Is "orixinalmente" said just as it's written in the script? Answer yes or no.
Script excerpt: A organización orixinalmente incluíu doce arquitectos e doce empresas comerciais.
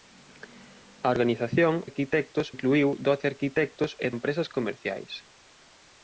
no